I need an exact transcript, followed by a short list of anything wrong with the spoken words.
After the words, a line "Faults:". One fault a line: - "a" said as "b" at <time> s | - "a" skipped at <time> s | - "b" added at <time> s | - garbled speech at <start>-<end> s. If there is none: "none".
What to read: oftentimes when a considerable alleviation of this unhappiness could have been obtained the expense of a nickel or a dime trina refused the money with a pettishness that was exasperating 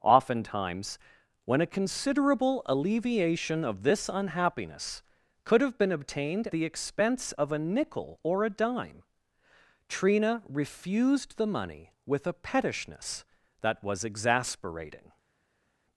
oftentimes when a considerable alleviation of this unhappiness could have been obtained the expense of a nickel or a dime trina refused the money with a pettishness that was exasperating
Faults:
none